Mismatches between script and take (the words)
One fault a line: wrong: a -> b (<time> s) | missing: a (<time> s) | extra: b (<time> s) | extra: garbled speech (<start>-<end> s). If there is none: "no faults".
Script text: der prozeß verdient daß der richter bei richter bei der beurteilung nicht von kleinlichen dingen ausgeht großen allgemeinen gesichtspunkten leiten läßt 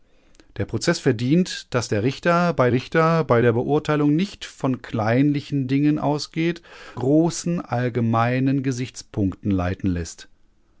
no faults